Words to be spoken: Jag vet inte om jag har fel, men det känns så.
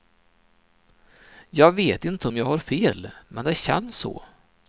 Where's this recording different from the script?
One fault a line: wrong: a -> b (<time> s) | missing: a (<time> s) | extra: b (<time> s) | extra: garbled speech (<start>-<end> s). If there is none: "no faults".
no faults